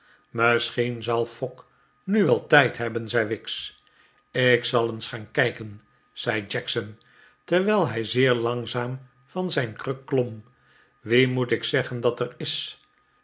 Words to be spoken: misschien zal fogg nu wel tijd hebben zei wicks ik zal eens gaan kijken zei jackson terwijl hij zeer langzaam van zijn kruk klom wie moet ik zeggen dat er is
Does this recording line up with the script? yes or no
yes